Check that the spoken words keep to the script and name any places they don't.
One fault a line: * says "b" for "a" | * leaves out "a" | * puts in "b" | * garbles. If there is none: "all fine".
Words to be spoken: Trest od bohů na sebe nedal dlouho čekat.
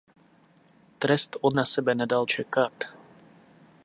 * leaves out "bohů"
* leaves out "dlouho"